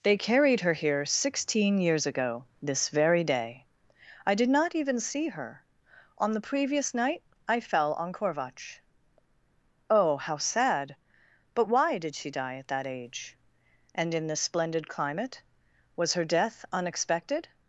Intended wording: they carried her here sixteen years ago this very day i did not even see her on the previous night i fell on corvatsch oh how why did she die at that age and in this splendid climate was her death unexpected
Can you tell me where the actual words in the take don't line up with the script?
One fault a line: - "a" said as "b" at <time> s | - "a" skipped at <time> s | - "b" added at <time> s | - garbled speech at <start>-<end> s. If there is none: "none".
- "sad but" added at 10.4 s